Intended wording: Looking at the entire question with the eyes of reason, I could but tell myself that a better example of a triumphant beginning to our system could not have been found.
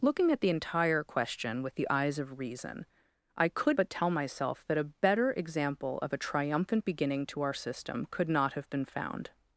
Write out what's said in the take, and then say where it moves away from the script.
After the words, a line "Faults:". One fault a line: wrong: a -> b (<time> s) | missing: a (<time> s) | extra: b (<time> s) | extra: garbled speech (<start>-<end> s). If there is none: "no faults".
Looking at the entire question with the eyes of reason, I could but tell myself that a better example of a triumphant beginning to our system could not have been found.
Faults:
no faults